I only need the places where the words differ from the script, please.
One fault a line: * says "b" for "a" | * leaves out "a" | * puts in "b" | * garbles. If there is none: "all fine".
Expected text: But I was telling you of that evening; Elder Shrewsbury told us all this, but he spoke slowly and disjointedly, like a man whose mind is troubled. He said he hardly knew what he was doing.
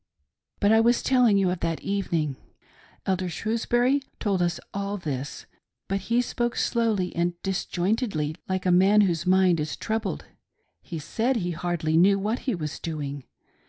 all fine